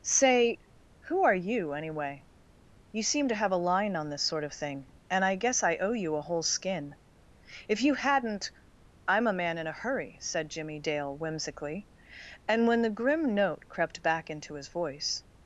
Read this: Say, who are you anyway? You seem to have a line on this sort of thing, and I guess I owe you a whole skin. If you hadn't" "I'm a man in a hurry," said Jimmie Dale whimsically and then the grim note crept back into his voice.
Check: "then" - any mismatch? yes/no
yes